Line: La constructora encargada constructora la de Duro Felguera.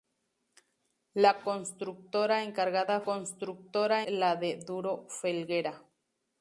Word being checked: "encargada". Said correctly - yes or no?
yes